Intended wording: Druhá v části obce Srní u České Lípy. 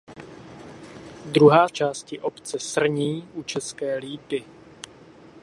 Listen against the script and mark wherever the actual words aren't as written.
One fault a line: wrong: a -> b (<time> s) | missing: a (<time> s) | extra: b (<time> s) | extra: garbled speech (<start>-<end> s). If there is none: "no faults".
no faults